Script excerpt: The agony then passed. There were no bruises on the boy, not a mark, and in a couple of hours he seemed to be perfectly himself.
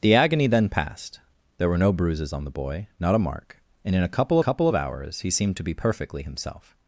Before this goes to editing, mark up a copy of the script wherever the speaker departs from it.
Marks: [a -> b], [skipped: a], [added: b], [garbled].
The agony then passed. There were no bruises on the boy, not a mark, and in a couple [added: couple] of hours he seemed to be perfectly himself.